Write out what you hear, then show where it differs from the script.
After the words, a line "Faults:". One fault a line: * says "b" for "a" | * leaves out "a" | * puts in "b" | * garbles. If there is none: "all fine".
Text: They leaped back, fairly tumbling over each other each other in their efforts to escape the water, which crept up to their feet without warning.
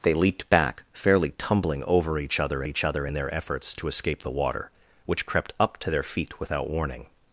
They leaped back, fairly tumbling over each other each other in their efforts to escape the water, which crept up to their feet without warning.
Faults:
all fine